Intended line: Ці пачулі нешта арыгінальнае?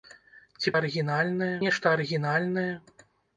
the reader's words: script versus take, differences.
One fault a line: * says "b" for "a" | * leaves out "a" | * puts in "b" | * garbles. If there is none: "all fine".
* says "арыгінальнае" for "пачулі"